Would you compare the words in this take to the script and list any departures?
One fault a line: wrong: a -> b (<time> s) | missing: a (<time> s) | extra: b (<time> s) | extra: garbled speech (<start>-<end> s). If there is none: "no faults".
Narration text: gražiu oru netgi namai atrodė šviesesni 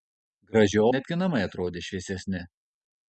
missing: oru (0.8 s)